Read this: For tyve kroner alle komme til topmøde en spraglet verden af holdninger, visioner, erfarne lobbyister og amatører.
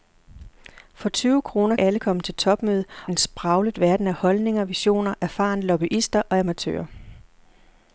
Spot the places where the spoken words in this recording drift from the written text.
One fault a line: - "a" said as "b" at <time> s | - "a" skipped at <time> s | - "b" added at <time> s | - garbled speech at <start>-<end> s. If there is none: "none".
none